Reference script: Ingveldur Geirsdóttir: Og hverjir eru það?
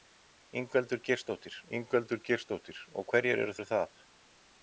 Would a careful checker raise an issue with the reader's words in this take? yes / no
yes